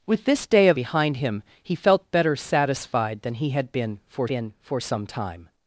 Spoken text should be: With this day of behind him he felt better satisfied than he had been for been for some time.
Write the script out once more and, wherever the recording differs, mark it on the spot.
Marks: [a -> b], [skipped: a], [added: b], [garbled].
With this day of behind him he felt better satisfied than he had been for been for some time.